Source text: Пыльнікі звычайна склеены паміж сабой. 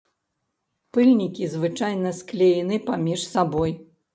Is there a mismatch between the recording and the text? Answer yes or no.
no